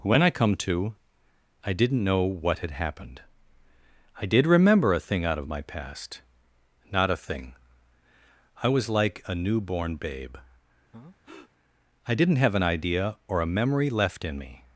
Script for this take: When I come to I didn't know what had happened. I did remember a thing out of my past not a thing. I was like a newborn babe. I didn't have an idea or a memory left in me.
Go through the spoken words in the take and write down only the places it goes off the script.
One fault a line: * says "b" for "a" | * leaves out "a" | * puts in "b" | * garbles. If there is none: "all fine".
all fine